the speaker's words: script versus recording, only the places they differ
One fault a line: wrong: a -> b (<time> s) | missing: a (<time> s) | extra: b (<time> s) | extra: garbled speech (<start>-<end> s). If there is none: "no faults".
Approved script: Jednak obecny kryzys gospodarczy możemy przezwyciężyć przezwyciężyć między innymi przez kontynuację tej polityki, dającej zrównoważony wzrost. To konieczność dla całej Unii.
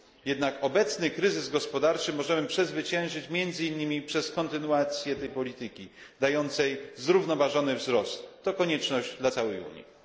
missing: przezwyciężyć (3.3 s)